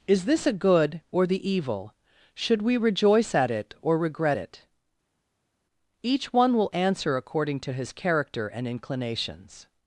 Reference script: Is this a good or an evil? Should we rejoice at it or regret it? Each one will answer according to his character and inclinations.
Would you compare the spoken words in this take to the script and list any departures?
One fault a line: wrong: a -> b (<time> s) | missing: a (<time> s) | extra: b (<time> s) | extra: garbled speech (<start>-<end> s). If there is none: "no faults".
wrong: an -> the (1.3 s)